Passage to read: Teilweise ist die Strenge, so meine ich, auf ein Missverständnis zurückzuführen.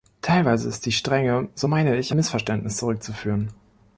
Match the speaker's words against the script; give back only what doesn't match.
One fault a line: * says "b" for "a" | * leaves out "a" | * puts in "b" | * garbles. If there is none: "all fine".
* leaves out "auf ein"